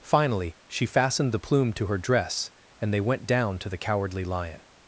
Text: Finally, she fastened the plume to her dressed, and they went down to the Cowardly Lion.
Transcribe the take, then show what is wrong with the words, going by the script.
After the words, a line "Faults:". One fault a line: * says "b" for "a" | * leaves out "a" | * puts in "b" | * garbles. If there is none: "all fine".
Finally, she fastened the plume to her dress, and they went down to the Cowardly Lion.
Faults:
* says "dress" for "dressed"